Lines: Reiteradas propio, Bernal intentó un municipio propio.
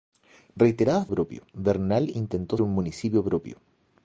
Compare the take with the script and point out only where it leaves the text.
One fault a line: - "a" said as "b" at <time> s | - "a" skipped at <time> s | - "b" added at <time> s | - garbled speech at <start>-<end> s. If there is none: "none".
none